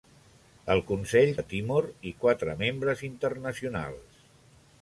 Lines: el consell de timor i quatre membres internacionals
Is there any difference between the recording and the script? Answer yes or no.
no